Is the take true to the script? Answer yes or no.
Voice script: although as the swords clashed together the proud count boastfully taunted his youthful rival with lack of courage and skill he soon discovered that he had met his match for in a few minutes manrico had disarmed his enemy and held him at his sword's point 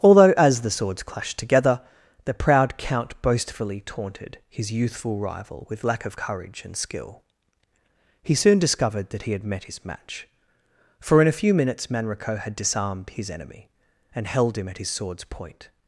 yes